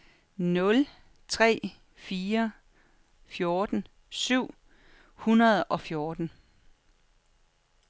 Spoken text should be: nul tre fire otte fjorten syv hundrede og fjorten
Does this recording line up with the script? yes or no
no